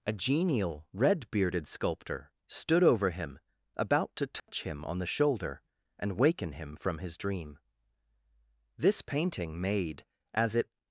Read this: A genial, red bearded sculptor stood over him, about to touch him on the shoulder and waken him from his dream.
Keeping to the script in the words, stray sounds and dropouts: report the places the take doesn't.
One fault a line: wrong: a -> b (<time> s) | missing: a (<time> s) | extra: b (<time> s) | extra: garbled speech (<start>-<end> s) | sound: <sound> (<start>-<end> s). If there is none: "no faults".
sound: dropout (4.4-4.5 s)
extra: This painting made as it (8.8 s)